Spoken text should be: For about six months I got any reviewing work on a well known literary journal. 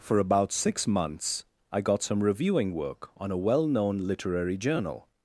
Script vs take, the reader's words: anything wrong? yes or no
yes